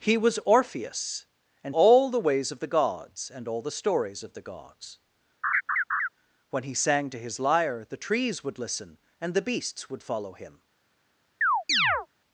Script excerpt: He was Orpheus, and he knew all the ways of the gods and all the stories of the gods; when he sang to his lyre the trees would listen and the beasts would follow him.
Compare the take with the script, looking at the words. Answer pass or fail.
fail